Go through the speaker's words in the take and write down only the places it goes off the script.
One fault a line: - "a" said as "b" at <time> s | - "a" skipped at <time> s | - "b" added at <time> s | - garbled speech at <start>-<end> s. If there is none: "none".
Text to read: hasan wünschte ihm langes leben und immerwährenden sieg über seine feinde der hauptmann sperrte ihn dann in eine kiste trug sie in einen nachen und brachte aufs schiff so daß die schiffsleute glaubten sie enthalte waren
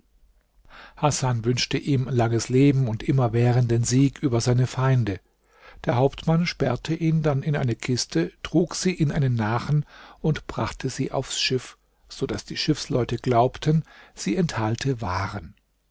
- "sie" added at 10.9 s